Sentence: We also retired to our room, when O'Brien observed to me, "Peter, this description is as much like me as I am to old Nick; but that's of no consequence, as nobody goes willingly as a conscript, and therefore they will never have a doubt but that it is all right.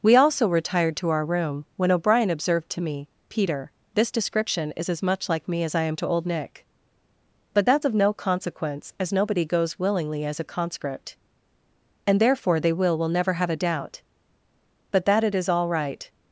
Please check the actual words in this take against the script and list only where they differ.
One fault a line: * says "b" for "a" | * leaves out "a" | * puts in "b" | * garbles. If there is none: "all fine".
* puts in "will"